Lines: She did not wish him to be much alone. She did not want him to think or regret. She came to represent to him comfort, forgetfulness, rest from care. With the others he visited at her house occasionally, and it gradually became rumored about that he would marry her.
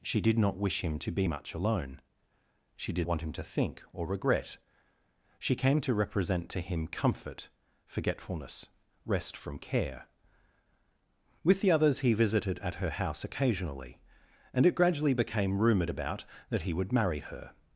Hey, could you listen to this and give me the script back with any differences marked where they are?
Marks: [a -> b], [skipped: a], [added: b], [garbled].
She did not wish him to be much alone. She did [skipped: not] want him to think or regret. She came to represent to him comfort, forgetfulness, rest from care. With the others he visited at her house occasionally, and it gradually became rumored about that he would marry her.